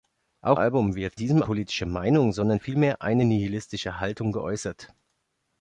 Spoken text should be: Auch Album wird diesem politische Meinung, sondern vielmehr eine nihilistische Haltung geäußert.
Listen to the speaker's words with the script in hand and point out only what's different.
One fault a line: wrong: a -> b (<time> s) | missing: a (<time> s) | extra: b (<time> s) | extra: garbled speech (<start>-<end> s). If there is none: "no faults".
no faults